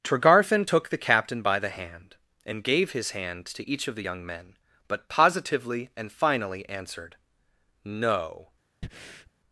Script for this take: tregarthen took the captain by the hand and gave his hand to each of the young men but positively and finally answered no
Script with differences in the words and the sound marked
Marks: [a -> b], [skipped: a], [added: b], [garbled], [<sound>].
tregarthen took the captain by the hand and gave his hand to each of the young men but positively and finally answered no [breath]